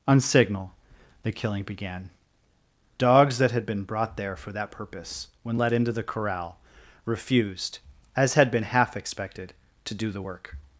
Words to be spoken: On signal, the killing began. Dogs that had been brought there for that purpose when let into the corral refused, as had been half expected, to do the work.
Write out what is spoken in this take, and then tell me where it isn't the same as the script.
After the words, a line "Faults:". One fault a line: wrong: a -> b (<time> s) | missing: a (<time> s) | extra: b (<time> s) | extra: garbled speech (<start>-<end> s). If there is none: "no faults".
On signal, the killing began. Dogs that had been brought there for that purpose when let into the corral refused, as had been half expected, to do the work.
Faults:
no faults